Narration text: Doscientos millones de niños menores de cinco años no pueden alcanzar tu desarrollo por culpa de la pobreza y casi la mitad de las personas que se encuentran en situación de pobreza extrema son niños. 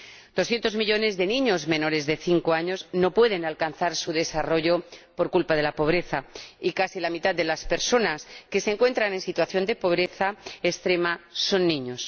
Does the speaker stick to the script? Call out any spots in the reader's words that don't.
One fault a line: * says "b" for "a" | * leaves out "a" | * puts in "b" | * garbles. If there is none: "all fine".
* says "su" for "tu"